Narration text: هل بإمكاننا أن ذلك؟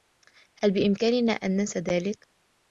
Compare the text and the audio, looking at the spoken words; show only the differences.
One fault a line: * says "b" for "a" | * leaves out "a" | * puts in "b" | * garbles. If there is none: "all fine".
* puts in "ننسى"